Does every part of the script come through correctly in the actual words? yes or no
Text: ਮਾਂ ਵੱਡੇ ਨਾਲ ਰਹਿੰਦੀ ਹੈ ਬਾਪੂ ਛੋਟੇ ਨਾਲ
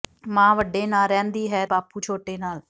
yes